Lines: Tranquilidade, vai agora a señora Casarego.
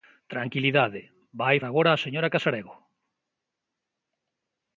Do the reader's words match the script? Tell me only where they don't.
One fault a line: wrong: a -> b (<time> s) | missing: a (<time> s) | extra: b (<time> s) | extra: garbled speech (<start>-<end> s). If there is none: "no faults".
no faults